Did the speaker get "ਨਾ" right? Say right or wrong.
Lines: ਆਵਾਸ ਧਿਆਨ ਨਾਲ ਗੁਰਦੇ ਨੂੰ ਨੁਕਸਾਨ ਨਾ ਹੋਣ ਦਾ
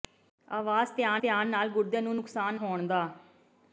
wrong